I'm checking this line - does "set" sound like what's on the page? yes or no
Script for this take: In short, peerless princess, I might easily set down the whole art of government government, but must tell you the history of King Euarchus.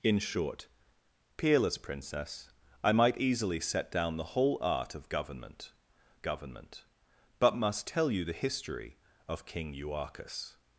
yes